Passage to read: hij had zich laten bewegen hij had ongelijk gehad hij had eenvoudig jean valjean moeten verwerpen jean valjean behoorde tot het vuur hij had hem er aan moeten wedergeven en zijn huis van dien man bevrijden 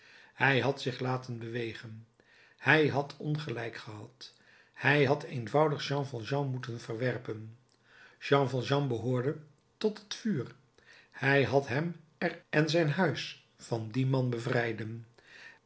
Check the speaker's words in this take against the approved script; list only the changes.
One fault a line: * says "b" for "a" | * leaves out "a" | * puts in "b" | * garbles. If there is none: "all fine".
* leaves out "aan moeten wedergeven"